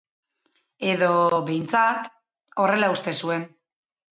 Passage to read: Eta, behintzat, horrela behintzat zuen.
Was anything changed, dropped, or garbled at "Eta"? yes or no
yes